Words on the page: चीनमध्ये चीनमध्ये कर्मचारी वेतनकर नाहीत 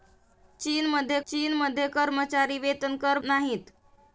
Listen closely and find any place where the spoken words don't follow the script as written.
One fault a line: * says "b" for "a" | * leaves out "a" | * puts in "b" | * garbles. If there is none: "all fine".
all fine